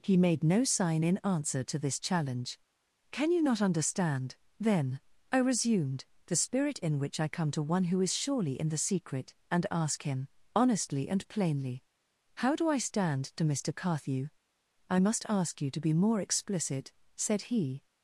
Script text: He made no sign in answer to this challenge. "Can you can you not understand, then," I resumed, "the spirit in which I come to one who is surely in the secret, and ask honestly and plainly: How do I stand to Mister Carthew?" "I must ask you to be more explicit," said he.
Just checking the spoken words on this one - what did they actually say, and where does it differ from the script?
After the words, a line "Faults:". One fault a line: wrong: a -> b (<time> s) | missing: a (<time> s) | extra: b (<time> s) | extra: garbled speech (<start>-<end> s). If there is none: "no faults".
He made no sign in answer to this challenge. "Can you not understand, then," I resumed, "the spirit in which I come to one who is surely in the secret, and ask him, honestly and plainly: How do I stand to Mister Carthew?" "I must ask you to be more explicit," said he.
Faults:
missing: can you (3.4 s)
extra: him (10.0 s)